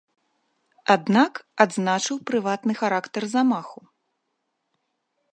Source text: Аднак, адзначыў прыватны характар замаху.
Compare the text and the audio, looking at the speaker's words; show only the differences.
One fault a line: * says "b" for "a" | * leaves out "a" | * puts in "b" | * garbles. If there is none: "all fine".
all fine